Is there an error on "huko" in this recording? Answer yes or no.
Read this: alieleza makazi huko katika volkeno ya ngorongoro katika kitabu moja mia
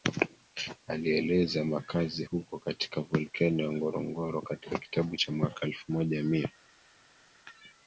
no